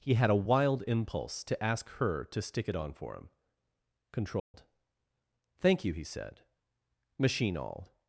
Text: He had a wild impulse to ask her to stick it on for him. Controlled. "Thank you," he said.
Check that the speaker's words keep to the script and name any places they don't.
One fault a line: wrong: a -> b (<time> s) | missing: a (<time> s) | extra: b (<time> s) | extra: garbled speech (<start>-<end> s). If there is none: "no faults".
extra: Machine all (7.2 s)